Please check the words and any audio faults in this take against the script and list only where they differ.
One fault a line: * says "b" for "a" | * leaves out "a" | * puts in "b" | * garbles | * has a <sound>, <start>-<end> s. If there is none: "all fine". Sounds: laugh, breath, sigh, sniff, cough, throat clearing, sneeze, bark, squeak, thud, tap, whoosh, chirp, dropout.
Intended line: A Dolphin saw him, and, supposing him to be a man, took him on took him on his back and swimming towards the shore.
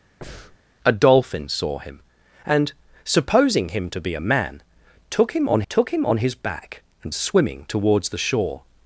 * has a breath, 0.2-0.6 s